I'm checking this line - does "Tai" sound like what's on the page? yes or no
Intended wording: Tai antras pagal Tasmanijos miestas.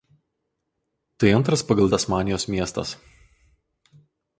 yes